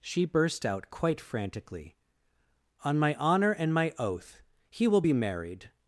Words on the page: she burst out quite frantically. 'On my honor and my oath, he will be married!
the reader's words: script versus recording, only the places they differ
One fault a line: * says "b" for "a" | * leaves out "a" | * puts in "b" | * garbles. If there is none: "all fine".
all fine